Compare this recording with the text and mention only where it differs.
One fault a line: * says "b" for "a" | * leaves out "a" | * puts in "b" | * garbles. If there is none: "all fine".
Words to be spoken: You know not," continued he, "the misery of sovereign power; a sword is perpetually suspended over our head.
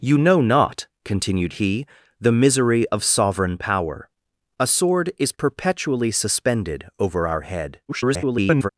* garbles